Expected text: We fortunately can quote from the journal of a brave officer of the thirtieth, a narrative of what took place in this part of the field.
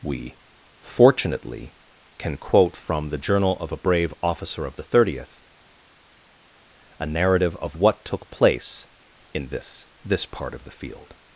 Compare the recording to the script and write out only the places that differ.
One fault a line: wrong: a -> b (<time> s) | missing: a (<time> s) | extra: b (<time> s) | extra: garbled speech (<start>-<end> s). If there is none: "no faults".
extra: this (10.0 s)